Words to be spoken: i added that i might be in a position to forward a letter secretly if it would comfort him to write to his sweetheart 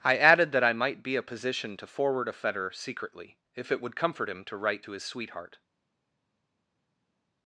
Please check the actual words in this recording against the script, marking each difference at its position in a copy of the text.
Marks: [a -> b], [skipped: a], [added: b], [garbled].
i added that i might be [skipped: in] a position to forward a [letter -> fetter] secretly if it would comfort him to write to his sweetheart